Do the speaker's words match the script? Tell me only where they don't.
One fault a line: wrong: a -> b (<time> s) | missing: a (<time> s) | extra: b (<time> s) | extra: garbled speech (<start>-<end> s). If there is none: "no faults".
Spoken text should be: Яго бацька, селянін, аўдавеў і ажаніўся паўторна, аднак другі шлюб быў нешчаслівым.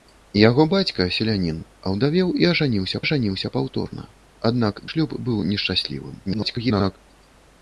extra: ажаніўся (3.0 s)
missing: другі (4.8 s)
extra: garbled speech (6.3-7.0 s)